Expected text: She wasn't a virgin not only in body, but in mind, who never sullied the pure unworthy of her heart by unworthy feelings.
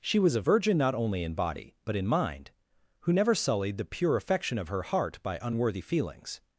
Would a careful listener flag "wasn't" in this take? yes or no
yes